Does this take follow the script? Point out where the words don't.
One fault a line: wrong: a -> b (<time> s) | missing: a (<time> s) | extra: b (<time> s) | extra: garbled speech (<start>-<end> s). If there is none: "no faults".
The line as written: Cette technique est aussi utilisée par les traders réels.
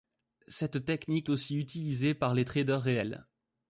missing: est (1.3 s)